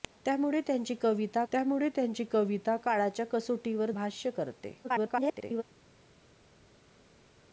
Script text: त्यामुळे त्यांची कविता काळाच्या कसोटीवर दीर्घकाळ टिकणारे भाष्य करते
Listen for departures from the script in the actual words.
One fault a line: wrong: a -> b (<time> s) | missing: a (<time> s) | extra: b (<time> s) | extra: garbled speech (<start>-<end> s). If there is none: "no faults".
extra: त्यामुळे त्यांची कविता (1.5 s)
missing: दीर्घकाळ टिकणारे (3.9 s)
extra: garbled speech (4.8-5.6 s)